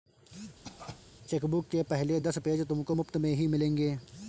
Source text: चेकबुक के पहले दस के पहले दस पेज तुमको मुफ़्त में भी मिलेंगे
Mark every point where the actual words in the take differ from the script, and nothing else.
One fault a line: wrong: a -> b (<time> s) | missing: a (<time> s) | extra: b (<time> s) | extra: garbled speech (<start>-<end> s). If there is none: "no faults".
missing: के पहले दस (2.4 s)
wrong: भी -> ही (3.3 s)